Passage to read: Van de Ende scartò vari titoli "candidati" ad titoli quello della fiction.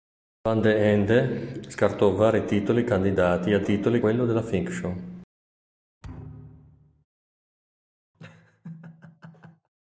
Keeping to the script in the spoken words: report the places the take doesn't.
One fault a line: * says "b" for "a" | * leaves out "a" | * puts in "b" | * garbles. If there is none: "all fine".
all fine